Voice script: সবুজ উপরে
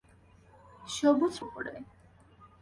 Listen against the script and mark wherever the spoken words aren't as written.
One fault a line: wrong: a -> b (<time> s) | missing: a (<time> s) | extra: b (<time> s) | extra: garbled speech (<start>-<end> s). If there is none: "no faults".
no faults